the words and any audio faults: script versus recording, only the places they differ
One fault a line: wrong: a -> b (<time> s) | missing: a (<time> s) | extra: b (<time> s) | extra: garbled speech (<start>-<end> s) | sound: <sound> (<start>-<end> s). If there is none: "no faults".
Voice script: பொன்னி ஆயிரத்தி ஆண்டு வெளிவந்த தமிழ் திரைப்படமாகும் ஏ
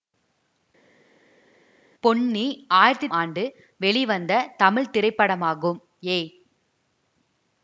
no faults